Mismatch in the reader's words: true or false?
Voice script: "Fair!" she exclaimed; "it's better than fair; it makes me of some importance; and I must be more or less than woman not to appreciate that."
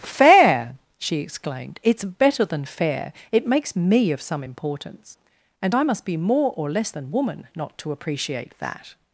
false